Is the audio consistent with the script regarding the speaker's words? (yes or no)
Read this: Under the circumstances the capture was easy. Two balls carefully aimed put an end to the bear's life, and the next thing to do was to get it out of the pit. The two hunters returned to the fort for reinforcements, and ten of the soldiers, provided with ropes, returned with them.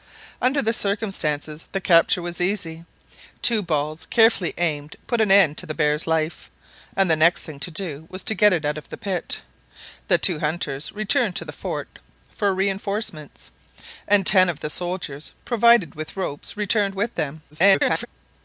no